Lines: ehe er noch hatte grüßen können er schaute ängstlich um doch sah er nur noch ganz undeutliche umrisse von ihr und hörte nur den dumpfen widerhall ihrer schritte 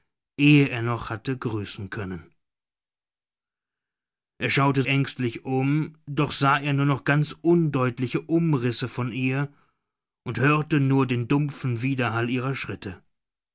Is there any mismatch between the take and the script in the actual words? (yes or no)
no